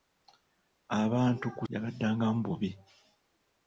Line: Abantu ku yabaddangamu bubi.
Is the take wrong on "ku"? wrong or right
right